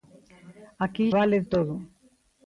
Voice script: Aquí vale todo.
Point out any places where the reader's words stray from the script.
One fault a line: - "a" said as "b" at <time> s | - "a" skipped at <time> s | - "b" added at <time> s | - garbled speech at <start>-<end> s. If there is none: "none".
none